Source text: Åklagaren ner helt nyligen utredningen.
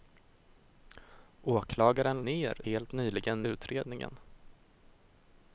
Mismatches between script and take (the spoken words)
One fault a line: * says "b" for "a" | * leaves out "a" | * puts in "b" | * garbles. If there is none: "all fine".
all fine